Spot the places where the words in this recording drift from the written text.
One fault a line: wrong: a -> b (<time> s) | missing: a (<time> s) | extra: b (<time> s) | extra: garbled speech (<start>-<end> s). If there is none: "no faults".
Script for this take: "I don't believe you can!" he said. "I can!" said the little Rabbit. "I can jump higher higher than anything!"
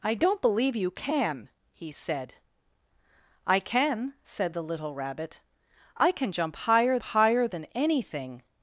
no faults